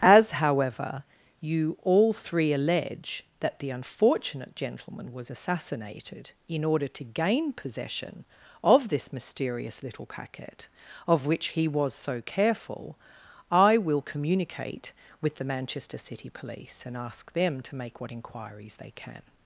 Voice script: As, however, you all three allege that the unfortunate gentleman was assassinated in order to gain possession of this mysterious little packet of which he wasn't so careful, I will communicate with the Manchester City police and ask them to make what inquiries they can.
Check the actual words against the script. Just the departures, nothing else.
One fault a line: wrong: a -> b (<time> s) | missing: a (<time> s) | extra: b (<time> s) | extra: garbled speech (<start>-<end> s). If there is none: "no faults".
wrong: wasn't -> was (11.7 s)